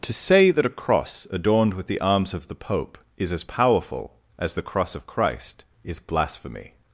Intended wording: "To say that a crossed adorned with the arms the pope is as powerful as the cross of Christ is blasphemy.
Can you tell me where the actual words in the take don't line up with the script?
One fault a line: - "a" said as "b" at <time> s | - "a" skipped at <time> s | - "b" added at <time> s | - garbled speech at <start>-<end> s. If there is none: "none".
- "crossed" said as "cross" at 0.7 s
- "of" added at 2.3 s